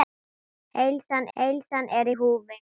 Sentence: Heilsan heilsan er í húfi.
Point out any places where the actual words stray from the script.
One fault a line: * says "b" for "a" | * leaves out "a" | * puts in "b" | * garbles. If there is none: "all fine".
all fine